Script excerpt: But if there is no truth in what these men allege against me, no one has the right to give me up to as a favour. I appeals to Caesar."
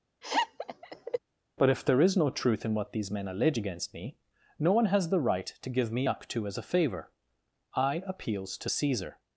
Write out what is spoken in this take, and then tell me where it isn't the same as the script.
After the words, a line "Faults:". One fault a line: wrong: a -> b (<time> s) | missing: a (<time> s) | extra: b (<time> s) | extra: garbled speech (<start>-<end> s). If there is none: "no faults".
But if there is no truth in what these men allege against me, no one has the right to give me up to as a favour. I appeals to Caesar."
Faults:
no faults